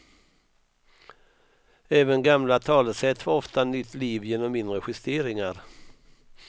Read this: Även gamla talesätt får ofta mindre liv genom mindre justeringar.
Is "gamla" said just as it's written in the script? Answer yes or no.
yes